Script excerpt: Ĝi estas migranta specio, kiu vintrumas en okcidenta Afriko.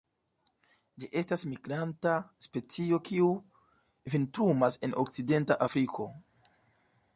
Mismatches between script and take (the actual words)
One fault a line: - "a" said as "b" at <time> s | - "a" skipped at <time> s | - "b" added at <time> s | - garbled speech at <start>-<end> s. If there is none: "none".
none